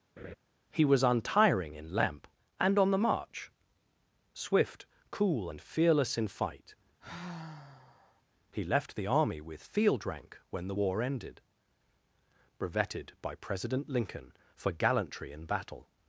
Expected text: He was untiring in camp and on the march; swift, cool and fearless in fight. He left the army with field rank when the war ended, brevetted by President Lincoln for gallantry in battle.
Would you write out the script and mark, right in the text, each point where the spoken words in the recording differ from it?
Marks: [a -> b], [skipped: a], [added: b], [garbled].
He was untiring in [camp -> lamp] and on the march; swift, cool and fearless in fight. He left the army with field rank when the war ended, brevetted by President Lincoln for gallantry in battle.